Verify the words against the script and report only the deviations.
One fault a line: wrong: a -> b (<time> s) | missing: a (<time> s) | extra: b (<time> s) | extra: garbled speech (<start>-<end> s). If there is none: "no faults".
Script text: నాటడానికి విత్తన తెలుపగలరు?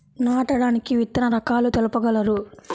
extra: రకాలు (1.3 s)